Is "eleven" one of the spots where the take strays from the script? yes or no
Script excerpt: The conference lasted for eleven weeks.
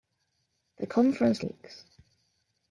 yes